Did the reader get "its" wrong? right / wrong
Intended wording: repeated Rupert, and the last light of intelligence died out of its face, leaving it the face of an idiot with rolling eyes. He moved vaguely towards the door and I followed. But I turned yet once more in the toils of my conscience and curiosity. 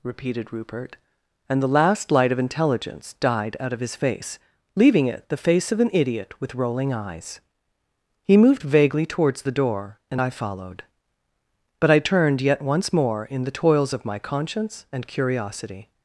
wrong